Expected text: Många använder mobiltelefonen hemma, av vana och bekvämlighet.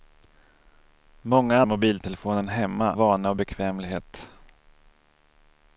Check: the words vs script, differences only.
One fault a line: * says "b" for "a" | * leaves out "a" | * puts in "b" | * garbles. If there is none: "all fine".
* leaves out "använder"
* leaves out "av"